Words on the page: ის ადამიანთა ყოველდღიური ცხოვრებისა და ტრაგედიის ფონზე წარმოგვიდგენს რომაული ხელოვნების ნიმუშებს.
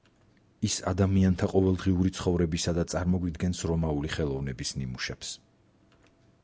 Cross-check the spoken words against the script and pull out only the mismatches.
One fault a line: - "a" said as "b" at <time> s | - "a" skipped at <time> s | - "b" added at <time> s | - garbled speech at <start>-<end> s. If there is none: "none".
- "ტრაგედიის ფონზე" skipped at 2.9 s